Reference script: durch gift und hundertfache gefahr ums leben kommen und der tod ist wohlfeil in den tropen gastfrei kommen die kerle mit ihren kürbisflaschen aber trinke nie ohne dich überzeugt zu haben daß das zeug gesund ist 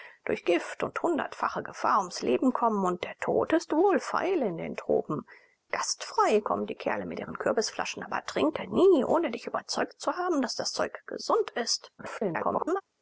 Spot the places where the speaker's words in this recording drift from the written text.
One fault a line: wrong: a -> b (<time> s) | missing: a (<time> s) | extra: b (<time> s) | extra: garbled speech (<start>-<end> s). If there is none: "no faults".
extra: garbled speech (12.0-12.8 s)